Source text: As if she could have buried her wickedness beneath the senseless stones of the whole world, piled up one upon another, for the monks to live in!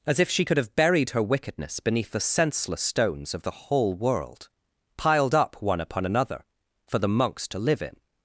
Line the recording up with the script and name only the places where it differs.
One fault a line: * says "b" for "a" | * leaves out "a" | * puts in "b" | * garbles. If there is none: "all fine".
all fine